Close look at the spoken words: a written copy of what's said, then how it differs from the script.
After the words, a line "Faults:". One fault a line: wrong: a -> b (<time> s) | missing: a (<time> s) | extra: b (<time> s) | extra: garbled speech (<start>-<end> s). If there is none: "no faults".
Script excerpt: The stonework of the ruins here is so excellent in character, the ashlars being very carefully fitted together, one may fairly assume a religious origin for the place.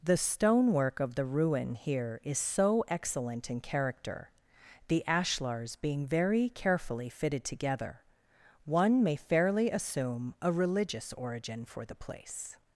The stonework of the ruin here is so excellent in character, the ashlars being very carefully fitted together, one may fairly assume a religious origin for the place.
Faults:
wrong: ruins -> ruin (1.2 s)